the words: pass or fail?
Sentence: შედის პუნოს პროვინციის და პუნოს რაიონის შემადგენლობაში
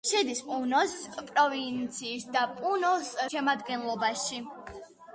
fail